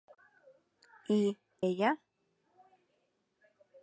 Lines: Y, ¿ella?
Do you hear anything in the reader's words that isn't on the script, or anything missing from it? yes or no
no